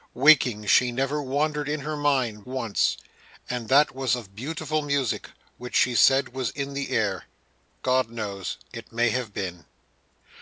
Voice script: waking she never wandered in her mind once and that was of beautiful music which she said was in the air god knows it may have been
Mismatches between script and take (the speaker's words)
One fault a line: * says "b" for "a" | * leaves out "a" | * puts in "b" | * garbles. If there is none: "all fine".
all fine